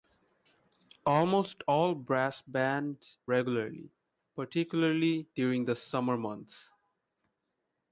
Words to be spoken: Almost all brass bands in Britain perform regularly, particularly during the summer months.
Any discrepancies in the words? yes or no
yes